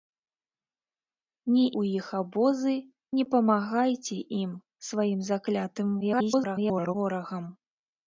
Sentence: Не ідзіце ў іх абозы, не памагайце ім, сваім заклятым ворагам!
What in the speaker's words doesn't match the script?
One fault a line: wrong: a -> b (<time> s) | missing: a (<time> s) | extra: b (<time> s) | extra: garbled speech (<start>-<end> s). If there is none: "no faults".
missing: ідзіце (1.6 s)
extra: garbled speech (6.0-6.9 s)